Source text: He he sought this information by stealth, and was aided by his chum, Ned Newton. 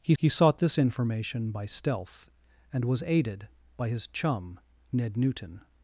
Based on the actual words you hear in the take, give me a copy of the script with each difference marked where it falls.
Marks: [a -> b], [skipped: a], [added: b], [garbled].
He he sought this information by stealth, and was aided by his chum, Ned Newton.